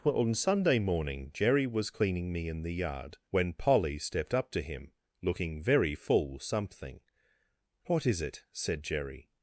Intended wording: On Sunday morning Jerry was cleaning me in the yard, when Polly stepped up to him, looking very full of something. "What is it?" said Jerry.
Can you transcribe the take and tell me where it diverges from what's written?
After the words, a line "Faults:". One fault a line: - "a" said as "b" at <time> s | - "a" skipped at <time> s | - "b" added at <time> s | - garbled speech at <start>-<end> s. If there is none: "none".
On Sunday morning Jerry was cleaning me in the yard, when Polly stepped up to him, looking very full something. "What is it?" said Jerry.
Faults:
- "of" skipped at 6.4 s